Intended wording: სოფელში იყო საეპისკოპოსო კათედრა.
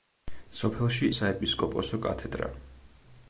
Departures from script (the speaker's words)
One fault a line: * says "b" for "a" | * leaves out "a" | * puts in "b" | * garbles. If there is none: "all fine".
* leaves out "იყო"